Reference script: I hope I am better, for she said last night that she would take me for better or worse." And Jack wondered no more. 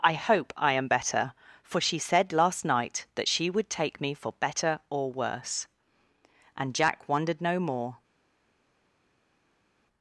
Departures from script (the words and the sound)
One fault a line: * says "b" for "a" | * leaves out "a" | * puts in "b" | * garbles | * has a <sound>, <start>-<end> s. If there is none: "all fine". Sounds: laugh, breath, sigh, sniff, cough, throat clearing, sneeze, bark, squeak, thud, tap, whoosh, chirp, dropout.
all fine